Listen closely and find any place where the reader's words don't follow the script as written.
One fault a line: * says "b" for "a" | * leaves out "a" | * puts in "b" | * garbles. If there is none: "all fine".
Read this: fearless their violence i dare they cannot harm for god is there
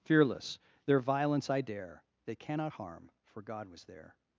* says "was" for "is"